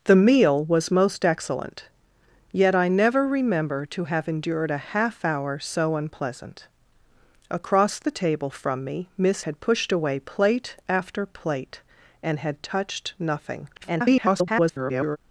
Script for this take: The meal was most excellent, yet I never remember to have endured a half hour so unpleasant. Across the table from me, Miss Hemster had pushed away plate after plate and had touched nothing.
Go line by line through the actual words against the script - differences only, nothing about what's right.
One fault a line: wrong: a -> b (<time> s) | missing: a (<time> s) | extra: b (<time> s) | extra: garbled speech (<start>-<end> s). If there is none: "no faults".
missing: Hemster (9.4 s)
extra: garbled speech (13.7-15.2 s)